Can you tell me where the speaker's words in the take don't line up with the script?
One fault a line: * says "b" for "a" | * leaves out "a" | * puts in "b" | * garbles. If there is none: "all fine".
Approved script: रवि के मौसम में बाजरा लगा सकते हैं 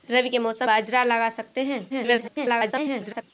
* leaves out "में"
* garbles